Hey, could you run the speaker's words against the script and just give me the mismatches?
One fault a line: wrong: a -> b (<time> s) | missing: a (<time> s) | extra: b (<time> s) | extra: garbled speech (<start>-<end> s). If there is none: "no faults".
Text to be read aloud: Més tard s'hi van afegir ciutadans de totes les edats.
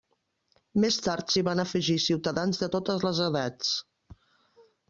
no faults